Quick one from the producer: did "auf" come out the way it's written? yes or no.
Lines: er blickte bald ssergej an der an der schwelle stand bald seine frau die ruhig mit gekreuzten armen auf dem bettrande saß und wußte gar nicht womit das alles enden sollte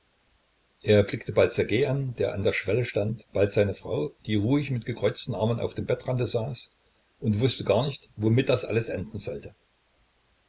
yes